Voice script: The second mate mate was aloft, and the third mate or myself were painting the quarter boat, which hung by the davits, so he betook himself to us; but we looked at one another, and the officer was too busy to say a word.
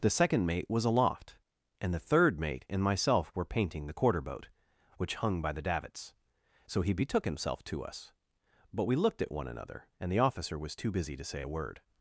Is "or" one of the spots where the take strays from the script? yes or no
yes